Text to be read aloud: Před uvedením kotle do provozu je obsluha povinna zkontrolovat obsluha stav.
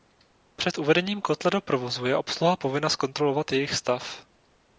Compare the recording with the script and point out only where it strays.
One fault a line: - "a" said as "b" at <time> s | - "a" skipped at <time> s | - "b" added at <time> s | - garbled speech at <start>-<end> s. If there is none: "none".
- "obsluha" said as "jejich" at 3.5 s